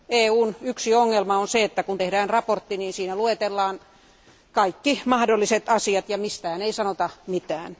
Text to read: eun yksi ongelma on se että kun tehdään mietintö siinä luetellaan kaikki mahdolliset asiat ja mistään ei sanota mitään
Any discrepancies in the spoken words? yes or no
no